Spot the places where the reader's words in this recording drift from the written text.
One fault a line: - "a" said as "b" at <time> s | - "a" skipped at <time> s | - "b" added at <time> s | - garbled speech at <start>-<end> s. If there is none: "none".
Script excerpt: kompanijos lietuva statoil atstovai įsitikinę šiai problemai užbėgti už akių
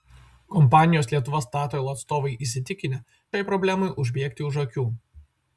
none